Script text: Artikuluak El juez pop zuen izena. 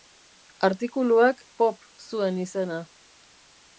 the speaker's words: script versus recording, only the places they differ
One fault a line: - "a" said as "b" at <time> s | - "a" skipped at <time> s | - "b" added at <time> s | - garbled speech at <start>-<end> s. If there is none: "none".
- "El juez" skipped at 1.4 s